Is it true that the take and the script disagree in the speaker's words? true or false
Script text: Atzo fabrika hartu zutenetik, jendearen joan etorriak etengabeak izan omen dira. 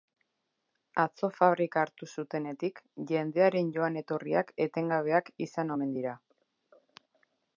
false